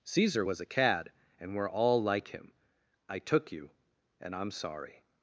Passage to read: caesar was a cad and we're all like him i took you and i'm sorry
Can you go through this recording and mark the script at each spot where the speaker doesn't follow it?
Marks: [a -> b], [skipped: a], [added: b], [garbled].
caesar was a cad and we're all like him i took you and i'm sorry